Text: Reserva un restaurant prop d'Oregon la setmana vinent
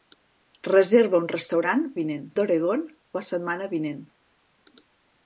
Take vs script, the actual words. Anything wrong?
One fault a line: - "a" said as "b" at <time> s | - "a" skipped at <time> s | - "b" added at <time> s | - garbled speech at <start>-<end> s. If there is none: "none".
- "prop" said as "vinent" at 2.0 s